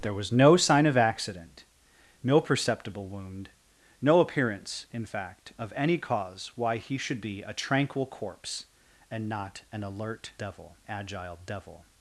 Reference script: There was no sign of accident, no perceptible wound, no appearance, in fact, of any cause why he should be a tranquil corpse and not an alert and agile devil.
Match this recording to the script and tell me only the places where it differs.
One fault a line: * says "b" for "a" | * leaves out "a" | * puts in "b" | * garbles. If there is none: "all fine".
* says "devil" for "and"